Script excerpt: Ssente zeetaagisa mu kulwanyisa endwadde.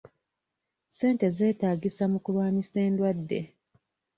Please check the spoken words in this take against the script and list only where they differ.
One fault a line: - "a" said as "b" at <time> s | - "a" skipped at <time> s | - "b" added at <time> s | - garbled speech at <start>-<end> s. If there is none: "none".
none